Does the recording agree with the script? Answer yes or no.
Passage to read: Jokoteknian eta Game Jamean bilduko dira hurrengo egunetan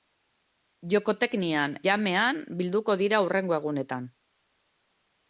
no